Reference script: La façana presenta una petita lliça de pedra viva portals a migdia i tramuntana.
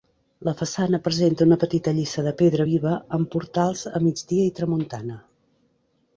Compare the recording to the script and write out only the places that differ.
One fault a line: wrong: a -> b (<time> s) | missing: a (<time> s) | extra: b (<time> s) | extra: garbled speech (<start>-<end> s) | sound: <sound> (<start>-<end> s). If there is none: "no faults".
extra: amb (3.2 s)